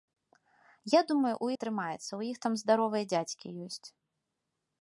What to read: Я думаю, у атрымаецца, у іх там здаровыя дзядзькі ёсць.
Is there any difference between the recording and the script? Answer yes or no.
no